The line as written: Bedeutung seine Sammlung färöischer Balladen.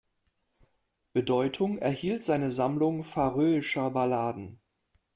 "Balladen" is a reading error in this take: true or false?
false